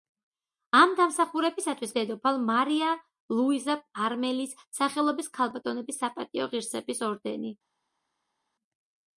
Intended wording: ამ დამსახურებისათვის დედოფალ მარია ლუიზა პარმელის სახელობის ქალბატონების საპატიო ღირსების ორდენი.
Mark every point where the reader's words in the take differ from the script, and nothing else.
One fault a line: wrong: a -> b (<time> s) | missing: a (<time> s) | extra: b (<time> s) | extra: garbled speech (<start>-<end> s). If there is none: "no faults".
no faults